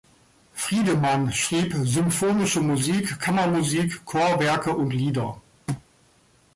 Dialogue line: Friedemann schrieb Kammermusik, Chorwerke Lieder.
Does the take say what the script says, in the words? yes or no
no